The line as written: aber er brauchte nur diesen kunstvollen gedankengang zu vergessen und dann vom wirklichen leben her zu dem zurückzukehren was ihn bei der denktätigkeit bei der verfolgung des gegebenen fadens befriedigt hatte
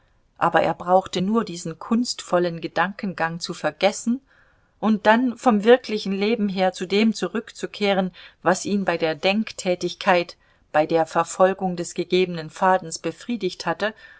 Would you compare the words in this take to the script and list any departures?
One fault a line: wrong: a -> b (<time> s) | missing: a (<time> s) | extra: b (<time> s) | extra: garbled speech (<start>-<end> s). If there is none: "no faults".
no faults